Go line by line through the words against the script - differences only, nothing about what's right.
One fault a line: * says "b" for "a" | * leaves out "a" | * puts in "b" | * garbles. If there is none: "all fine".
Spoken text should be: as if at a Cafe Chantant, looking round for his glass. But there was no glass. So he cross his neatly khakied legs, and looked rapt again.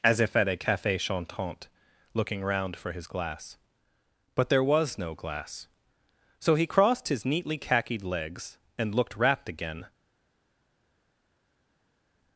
* says "crossed" for "cross"